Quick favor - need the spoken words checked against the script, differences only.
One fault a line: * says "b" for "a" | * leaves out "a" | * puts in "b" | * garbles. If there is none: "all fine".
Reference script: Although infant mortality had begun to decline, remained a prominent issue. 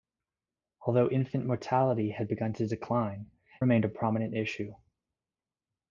all fine